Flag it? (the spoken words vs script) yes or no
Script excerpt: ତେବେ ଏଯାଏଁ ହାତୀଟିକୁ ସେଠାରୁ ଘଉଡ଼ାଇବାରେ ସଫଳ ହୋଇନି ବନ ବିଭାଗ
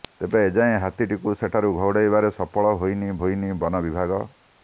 yes